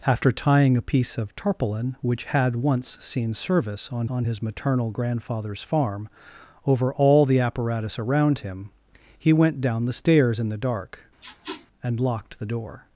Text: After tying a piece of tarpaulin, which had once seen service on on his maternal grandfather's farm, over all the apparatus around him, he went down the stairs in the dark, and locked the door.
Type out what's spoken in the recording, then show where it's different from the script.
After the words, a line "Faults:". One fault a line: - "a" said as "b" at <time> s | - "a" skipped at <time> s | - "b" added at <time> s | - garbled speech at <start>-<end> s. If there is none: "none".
After tying a piece of tarpaulin, which had once seen service on on his maternal grandfather's farm, over all the apparatus around him, he went down the stairs in the dark, and locked the door.
Faults:
none